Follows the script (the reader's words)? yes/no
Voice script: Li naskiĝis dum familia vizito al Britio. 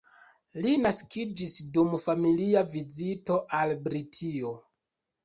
yes